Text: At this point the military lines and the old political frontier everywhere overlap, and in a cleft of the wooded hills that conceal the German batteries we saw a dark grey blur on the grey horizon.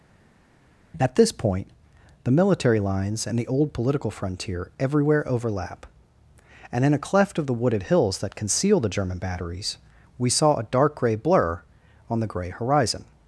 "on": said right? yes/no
yes